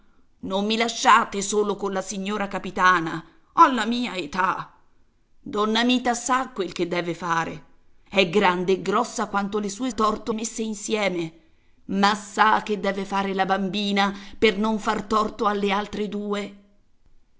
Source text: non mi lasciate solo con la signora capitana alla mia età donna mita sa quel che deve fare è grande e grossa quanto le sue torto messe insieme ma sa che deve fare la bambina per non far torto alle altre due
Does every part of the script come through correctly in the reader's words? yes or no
yes